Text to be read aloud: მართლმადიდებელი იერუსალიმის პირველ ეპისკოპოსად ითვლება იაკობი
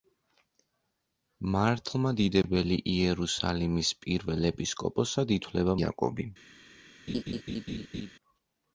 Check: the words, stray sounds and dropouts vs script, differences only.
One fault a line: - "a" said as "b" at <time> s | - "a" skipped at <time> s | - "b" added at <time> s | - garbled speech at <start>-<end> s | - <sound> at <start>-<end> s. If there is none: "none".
- laugh at 7.1-8.1 s